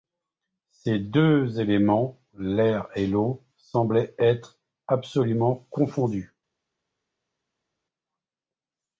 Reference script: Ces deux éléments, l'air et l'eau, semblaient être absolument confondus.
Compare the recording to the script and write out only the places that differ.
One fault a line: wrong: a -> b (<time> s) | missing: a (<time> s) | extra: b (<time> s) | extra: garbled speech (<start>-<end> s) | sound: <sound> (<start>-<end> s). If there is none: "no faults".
no faults